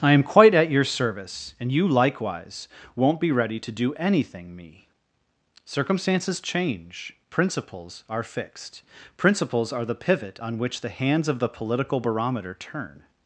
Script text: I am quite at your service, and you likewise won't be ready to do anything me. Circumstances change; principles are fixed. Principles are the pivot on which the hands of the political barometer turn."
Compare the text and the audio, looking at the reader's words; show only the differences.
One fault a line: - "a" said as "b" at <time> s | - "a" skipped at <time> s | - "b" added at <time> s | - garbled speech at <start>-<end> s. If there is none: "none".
none